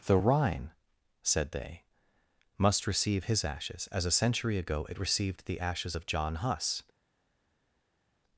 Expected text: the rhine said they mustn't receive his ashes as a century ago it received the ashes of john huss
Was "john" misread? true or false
false